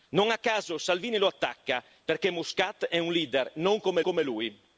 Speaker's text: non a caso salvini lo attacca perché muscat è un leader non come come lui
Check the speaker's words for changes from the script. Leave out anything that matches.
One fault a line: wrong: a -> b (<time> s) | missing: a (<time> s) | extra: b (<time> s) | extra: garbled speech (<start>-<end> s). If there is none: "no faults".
no faults